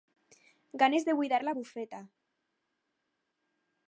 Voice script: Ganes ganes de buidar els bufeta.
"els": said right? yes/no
no